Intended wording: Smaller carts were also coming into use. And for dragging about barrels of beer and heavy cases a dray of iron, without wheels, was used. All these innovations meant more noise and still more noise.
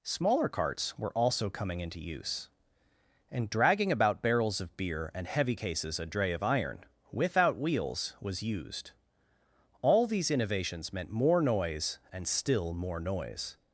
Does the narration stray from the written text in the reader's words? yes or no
yes